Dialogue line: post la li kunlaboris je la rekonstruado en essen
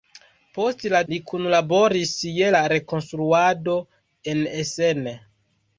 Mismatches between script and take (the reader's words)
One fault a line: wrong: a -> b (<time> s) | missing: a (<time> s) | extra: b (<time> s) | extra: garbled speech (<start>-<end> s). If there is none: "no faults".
no faults